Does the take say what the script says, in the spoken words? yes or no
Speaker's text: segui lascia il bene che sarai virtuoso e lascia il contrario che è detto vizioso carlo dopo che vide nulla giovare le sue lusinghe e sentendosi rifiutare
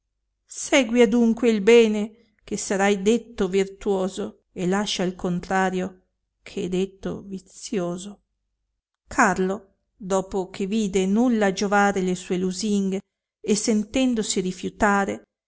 no